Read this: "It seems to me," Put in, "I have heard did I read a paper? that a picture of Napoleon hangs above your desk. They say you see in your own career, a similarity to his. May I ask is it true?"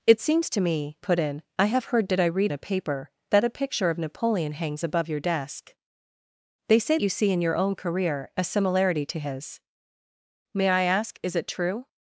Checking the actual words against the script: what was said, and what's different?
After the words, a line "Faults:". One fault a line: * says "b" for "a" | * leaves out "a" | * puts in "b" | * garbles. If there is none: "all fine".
"It seems to me," Put in, "I have heard did I read a paper? that a picture of Napoleon hangs above your desk. They say you see in your own career, a similarity to his. May I ask is it true?"
Faults:
all fine